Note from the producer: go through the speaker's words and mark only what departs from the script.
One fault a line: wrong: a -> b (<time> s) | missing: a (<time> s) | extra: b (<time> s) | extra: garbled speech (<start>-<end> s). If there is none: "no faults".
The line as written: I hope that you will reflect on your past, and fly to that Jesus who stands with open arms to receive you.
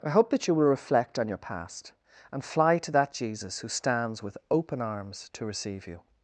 no faults